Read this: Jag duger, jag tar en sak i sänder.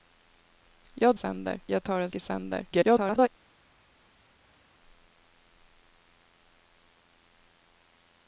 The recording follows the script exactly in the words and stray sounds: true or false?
false